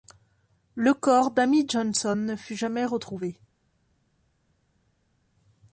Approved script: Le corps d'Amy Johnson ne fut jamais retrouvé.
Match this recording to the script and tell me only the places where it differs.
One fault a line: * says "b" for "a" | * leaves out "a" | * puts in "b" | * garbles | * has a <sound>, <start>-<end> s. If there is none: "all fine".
all fine